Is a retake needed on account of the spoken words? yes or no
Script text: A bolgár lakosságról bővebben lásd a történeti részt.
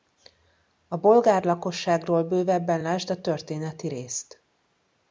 no